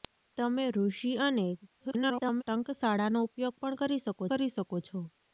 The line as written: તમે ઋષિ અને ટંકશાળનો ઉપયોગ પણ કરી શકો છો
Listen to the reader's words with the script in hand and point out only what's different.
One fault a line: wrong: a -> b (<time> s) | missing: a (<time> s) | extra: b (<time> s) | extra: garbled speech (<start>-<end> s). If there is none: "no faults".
extra: garbled speech (1.8-2.4 s)
extra: કરી શકો (4.3 s)